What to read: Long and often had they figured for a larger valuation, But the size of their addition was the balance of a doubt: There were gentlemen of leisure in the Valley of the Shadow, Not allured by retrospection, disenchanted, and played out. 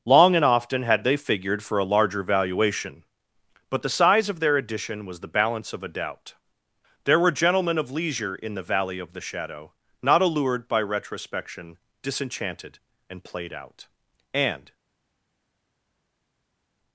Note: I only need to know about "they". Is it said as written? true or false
true